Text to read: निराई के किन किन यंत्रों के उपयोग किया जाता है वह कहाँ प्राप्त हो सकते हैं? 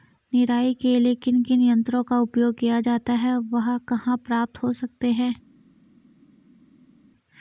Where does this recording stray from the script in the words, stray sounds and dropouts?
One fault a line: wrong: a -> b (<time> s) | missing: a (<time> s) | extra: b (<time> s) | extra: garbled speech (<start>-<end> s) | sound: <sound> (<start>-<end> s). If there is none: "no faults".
extra: लिए (1.0 s)
wrong: के -> का (2.0 s)